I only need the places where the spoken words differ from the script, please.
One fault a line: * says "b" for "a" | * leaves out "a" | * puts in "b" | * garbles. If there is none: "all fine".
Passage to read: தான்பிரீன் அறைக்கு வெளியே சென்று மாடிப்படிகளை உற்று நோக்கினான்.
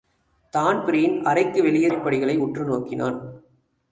* leaves out "சென்று"